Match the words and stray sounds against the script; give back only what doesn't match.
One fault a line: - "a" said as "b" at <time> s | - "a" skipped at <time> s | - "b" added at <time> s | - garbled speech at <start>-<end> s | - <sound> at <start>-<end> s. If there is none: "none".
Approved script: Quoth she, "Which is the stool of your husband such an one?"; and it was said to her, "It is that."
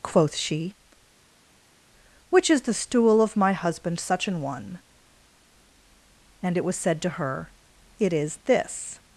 - "your" said as "my" at 3.4 s
- "that" said as "this" at 8.5 s